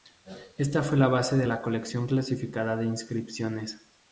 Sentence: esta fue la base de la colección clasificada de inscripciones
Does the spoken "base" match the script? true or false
true